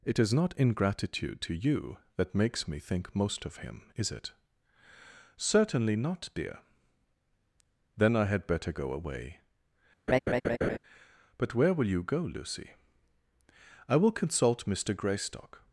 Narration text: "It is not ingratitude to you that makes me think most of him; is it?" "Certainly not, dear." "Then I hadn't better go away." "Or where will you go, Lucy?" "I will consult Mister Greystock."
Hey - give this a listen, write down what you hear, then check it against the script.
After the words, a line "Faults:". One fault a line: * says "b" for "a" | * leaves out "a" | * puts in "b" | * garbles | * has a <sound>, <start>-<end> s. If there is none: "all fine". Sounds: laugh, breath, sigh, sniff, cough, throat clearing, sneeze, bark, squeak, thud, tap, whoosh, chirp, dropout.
"It is not ingratitude to you that makes me think most of him; is it?" "Certainly not, dear." "Then I had better go away." "But where will you go, Lucy?" "I will consult Mister Greystock."
Faults:
* says "had" for "hadn't"
* has a laugh, 10.1-10.8 s
* says "But" for "Or"